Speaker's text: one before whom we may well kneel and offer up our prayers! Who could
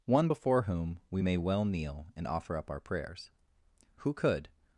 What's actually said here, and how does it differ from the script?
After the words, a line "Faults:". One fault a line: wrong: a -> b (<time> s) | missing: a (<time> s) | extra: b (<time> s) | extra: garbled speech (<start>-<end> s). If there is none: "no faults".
one before whom we may well kneel and offer up our prayers! Who could
Faults:
no faults